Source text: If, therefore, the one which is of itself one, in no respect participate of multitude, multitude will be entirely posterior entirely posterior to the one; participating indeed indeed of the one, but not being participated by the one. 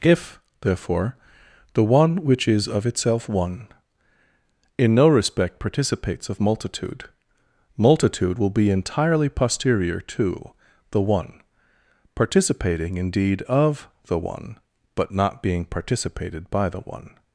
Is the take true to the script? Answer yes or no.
no